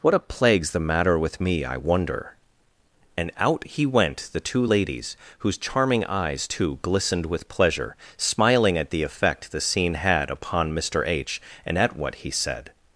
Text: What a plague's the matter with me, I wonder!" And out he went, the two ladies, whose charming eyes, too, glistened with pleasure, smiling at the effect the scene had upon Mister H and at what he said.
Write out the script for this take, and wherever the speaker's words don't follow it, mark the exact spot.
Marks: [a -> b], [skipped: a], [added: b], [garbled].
What a plague's the matter with me, I wonder!" And out he went, the two ladies, whose charming eyes, too, glistened with pleasure, smiling at the effect the scene had upon Mister H and at what he said.